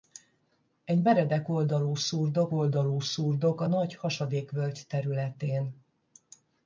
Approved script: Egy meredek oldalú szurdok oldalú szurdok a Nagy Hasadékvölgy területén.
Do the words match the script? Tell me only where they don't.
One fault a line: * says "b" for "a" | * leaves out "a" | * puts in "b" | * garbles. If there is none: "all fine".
all fine